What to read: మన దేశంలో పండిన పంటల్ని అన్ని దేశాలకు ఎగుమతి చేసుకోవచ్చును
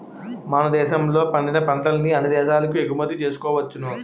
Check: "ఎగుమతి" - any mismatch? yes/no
no